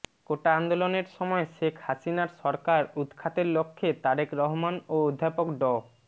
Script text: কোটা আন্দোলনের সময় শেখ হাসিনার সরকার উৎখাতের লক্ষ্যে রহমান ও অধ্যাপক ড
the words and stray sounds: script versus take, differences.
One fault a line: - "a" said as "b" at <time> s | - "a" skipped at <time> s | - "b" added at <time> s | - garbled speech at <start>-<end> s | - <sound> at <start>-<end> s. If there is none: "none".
- "তারেক" added at 4.0 s